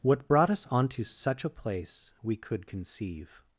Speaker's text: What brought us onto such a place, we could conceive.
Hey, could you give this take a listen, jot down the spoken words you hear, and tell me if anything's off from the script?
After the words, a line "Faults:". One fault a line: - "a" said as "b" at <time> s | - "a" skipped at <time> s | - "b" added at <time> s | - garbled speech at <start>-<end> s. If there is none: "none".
What brought us onto such a place, we could conceive.
Faults:
none